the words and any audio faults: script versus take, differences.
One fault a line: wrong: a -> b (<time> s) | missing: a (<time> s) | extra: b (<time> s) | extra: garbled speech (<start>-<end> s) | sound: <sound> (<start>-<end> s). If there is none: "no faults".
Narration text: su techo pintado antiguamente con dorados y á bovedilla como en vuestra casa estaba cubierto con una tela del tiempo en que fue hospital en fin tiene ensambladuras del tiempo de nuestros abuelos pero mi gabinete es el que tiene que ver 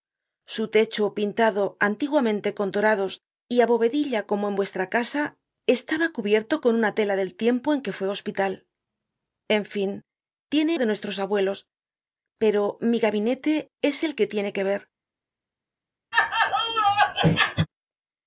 missing: ensambladuras del tiempo (10.7 s)
sound: laugh (16.1-17.7 s)